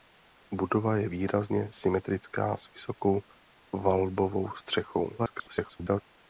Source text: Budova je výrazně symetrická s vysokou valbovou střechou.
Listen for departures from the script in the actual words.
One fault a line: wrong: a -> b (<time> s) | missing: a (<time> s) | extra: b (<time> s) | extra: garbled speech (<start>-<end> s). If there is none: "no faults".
extra: garbled speech (5.2-6.0 s)